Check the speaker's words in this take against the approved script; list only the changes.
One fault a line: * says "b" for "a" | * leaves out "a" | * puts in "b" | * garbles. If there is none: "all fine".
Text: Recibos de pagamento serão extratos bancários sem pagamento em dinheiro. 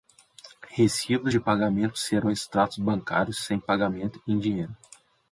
all fine